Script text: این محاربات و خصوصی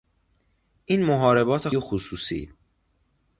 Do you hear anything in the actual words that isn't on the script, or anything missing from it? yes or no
no